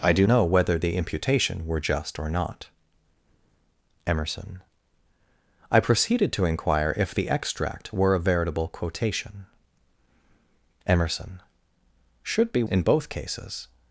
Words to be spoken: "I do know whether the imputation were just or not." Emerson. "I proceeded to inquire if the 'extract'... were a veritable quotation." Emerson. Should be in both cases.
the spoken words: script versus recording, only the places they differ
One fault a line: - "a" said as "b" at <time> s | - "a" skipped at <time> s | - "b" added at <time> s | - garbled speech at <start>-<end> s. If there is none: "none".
none